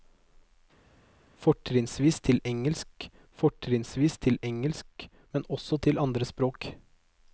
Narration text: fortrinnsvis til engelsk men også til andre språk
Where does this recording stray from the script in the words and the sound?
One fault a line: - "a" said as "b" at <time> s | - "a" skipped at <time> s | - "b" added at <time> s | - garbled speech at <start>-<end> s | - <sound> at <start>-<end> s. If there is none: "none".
- "fortrinnsvis til engelsk" added at 3.4 s